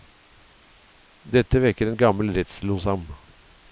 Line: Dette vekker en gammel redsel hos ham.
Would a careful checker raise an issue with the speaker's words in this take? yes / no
no